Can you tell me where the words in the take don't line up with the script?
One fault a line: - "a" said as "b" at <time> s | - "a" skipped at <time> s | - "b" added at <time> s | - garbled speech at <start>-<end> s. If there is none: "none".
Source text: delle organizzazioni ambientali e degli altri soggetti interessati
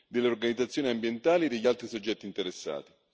none